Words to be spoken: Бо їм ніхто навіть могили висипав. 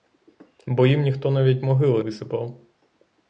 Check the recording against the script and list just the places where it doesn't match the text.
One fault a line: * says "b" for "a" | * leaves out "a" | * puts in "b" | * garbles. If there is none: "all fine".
all fine